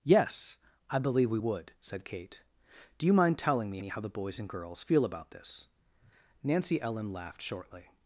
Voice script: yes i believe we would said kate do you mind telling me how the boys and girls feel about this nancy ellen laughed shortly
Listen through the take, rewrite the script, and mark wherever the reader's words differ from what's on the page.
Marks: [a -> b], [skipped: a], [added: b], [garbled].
yes i believe we would said kate do you mind telling me [added: me] how the boys and girls feel about this nancy ellen laughed shortly